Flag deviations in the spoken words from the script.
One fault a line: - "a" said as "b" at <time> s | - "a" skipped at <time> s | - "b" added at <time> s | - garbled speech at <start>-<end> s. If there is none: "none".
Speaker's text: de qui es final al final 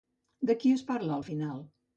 - "final" said as "parla" at 0.9 s